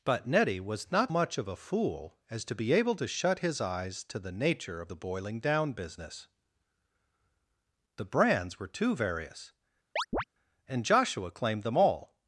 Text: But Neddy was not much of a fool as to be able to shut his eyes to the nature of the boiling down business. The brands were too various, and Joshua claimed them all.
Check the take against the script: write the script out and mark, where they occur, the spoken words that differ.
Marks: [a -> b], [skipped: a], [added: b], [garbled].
But Neddy was not much of a fool as to be able to shut his eyes to the nature of the boiling down business. The brands were too various, and Joshua claimed them all.